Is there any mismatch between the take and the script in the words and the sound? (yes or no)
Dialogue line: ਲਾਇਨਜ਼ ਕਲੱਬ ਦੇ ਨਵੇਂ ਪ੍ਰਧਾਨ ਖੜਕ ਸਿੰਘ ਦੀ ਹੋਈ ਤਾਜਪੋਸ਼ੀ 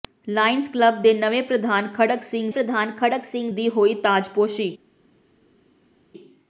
yes